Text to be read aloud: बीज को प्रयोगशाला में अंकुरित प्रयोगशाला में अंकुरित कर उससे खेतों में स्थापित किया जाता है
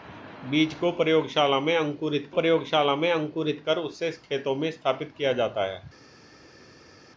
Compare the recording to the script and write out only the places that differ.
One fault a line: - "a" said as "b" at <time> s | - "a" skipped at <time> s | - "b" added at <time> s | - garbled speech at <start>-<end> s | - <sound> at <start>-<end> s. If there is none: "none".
none